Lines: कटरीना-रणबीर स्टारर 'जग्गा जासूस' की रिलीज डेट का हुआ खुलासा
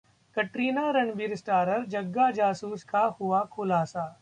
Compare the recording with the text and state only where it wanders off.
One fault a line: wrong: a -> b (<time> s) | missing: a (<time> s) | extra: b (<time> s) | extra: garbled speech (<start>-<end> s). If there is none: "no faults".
missing: की रिलीज डेट (2.8 s)